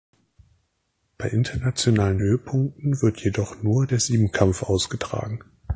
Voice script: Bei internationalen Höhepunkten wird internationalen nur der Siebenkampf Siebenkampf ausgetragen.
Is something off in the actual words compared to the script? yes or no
yes